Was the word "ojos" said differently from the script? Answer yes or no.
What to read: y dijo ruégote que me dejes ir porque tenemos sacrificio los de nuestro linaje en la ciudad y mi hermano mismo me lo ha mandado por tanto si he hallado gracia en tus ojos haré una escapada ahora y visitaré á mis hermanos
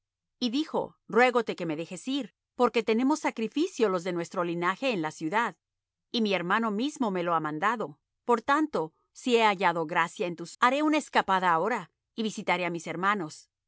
yes